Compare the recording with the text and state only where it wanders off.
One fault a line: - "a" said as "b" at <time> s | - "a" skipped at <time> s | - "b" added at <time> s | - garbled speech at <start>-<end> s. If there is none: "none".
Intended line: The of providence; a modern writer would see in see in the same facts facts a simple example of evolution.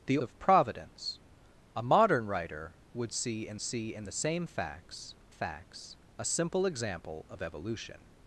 none